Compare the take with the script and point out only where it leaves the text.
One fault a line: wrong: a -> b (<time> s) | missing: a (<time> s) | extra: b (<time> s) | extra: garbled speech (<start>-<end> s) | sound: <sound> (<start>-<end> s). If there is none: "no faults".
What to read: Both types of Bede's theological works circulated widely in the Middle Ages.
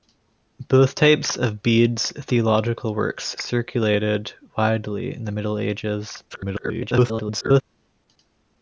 extra: garbled speech (6.3-7.6 s)